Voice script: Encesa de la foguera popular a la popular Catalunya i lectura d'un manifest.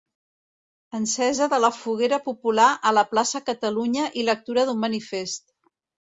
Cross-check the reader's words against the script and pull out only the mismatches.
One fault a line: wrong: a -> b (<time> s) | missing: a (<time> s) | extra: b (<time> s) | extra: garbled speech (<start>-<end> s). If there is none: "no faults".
wrong: popular -> plaça (3.1 s)